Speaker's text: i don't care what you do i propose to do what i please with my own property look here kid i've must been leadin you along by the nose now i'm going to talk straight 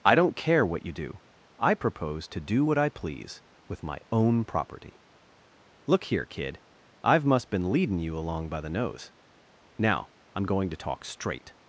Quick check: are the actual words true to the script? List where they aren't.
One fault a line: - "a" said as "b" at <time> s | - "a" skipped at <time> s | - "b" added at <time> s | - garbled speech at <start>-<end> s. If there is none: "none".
none